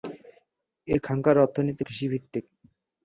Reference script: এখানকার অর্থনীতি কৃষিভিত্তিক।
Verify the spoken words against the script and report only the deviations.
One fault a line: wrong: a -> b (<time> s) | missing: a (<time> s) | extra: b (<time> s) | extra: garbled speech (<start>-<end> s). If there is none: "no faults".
no faults